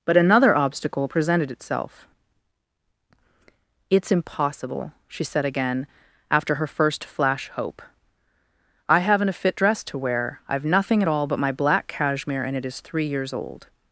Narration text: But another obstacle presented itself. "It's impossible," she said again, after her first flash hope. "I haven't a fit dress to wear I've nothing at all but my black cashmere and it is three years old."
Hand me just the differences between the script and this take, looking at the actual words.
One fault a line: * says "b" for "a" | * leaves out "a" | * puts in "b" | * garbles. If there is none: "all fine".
all fine